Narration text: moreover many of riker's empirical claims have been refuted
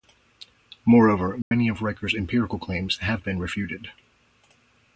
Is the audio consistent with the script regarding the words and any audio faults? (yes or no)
no